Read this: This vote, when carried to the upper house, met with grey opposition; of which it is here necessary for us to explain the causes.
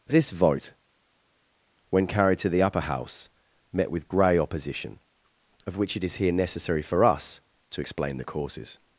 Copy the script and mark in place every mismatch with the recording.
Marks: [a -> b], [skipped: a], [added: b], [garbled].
This vote, when carried to the upper house, met with grey opposition; of which it is here necessary for us to explain the causes.